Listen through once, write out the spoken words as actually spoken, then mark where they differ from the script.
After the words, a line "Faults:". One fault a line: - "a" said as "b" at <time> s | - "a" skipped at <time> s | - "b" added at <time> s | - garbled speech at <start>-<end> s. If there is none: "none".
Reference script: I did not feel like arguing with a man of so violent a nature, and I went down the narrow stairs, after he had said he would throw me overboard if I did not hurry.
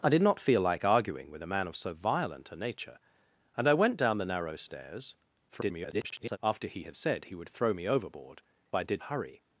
I did not feel like arguing with a man of so violent a nature, and I went down the narrow stairs, [garbled] after he had said he would throw me overboard I did hurry.
Faults:
- garbled speech at 5.5-6.4 s
- "if" skipped at 8.4 s
- "not" skipped at 9.0 s